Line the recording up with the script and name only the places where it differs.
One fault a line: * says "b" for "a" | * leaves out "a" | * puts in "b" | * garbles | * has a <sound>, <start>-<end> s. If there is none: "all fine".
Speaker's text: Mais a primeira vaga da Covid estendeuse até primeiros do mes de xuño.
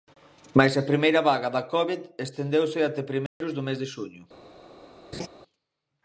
* has a dropout, 3.3-3.4 s
* has a laugh, 5.1-5.3 s